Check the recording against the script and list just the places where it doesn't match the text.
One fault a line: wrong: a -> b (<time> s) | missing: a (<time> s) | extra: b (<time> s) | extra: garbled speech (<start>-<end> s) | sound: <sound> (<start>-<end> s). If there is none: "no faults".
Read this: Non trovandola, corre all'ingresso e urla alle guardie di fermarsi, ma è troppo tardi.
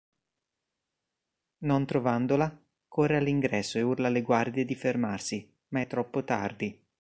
no faults